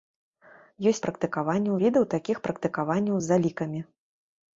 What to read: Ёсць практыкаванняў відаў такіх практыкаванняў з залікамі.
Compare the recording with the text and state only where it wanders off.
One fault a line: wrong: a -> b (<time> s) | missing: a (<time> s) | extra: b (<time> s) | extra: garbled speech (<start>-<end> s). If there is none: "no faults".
no faults